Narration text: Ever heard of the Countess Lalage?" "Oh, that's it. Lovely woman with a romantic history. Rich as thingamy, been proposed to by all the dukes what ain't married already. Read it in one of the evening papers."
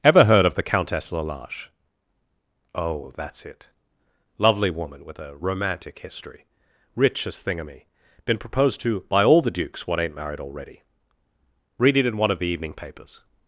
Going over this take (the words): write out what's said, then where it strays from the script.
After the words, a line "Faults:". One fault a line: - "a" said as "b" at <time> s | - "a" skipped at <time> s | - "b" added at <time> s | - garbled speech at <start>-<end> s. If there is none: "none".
Ever heard of the Countess Lalage?" "Oh, that's it. Lovely woman with a romantic history. Rich as thingamy, been proposed to by all the dukes what ain't married already. Read it in one of the evening papers."
Faults:
none